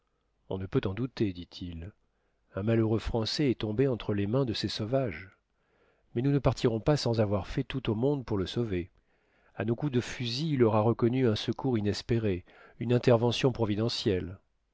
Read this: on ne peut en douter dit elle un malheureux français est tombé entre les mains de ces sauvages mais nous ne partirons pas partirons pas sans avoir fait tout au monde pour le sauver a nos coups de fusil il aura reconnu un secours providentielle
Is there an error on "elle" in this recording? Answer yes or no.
yes